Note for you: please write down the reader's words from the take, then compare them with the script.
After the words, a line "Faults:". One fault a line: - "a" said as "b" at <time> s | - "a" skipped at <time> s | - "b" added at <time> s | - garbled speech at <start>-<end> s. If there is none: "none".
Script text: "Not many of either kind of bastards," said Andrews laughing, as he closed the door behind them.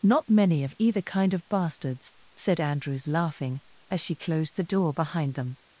"Not many of either kind of bastards," said Andrews laughing, as she closed the door behind them.
Faults:
- "he" said as "she" at 4.0 s